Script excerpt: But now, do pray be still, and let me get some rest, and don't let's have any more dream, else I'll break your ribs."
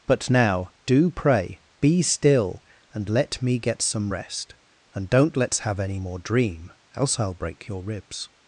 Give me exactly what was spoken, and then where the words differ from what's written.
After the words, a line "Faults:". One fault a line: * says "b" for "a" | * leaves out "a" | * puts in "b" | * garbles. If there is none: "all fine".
But now, do pray be still, and let me get some rest, and don't let's have any more dream, else I'll break your ribs."
Faults:
all fine